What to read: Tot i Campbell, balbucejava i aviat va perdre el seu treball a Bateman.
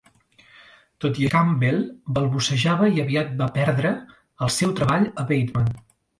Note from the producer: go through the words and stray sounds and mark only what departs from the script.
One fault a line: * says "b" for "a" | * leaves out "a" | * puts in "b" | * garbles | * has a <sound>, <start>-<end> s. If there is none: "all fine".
all fine